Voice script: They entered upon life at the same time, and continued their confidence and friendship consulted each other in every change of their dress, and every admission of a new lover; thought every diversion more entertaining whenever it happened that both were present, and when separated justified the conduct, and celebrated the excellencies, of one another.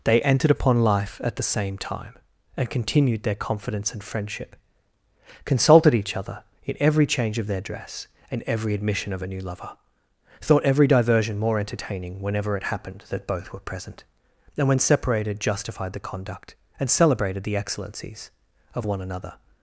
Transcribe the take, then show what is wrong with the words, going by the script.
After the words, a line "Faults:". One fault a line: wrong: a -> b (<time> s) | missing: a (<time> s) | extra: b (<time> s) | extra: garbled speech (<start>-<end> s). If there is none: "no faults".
They entered upon life at the same time, and continued their confidence and friendship consulted each other in every change of their dress, and every admission of a new lover; thought every diversion more entertaining whenever it happened that both were present, and when separated justified the conduct, and celebrated the excellencies, of one another.
Faults:
no faults